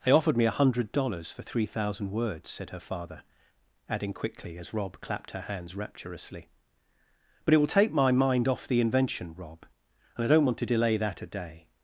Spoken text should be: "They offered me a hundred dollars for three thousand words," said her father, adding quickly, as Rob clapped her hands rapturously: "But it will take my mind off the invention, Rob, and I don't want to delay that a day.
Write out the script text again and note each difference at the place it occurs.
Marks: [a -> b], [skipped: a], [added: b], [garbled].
"They offered me a hundred dollars for three thousand words," said her father, adding quickly, as Rob clapped her hands rapturously: "But it will take my mind off the invention, Rob, and I don't want to delay that a day.